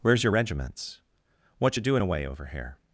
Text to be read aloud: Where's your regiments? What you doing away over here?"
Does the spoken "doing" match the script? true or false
true